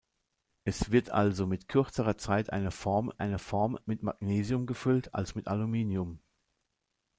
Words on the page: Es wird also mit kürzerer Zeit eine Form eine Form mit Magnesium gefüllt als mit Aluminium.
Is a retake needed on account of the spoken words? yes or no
no